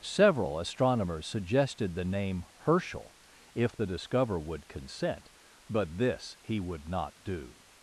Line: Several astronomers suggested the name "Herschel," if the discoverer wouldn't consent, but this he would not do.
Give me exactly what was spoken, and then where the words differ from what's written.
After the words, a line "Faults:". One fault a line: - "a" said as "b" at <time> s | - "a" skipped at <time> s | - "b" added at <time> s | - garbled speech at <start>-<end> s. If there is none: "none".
Several astronomers suggested the name "Herschel," if the discoverer would consent, but this he would not do.
Faults:
- "wouldn't" said as "would" at 4.4 s